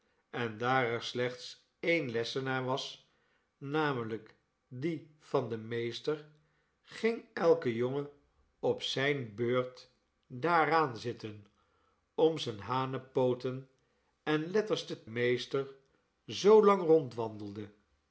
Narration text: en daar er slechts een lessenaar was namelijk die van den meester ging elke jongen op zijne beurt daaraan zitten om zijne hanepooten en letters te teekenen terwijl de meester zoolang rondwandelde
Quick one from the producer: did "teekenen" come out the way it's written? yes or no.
no